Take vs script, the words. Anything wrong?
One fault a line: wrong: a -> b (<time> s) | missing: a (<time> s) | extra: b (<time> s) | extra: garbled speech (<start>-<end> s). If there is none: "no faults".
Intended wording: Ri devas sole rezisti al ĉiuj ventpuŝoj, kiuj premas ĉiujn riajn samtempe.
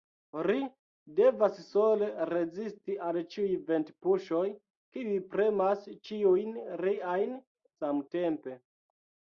no faults